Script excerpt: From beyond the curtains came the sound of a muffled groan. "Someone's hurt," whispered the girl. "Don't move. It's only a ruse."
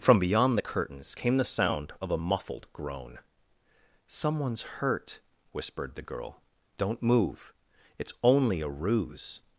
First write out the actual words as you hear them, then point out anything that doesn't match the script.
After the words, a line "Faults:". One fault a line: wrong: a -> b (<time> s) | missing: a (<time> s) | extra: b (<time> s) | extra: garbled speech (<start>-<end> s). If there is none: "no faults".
From beyond the curtains came the sound of a muffled groan. "Someone's hurt," whispered the girl. "Don't move. It's only a ruse."
Faults:
no faults